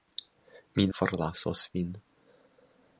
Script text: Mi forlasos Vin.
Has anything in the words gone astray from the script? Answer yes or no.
no